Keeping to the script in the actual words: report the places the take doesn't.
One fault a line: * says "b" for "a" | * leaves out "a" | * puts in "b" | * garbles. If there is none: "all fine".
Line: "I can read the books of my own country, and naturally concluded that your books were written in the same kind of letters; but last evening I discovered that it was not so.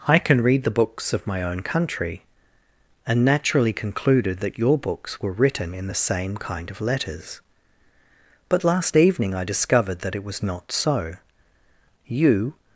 * puts in "You"